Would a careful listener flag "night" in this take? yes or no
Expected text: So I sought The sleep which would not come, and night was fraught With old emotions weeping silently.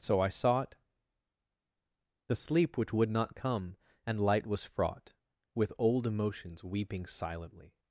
yes